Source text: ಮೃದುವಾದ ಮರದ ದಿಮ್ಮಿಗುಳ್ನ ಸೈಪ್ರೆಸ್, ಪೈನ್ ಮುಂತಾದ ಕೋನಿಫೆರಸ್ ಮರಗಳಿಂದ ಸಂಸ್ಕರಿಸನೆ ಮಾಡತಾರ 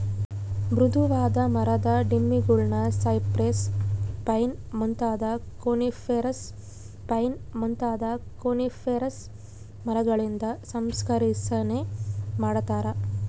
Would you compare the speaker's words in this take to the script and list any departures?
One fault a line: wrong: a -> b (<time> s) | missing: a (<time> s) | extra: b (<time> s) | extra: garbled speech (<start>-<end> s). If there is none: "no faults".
extra: ಪೈನ್ ಮುಂತಾದ ಕೋನಿಫೆರಸ್ (7.1 s)